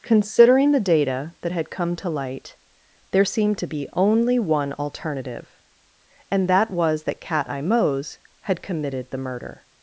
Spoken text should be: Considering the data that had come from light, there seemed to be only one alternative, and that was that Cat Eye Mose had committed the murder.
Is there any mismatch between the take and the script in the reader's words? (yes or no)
yes